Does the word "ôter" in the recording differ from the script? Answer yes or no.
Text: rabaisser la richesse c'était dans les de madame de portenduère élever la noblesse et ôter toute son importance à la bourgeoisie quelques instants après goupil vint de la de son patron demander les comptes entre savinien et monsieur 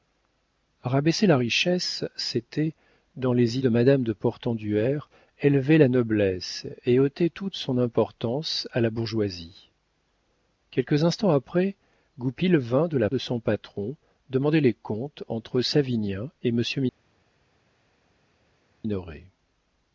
no